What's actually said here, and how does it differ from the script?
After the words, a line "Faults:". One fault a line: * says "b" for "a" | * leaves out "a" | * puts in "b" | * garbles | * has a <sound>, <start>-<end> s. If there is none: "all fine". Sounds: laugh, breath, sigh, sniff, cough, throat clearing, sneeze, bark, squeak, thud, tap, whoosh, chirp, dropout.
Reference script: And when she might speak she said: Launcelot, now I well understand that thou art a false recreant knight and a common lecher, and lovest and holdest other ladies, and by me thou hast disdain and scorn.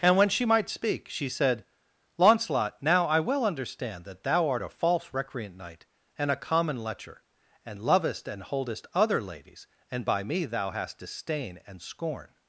And when she might speak she said: Launcelot, now I well understand that thou art a false recreant knight and a common lecher, and lovest and holdest other ladies, and by me thou hast disdain and scorn.
Faults:
all fine